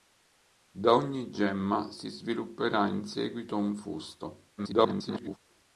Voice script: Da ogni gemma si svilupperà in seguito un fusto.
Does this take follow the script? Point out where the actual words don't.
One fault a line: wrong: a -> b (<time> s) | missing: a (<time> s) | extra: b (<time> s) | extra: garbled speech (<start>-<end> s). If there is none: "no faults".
extra: garbled speech (4.6-5.4 s)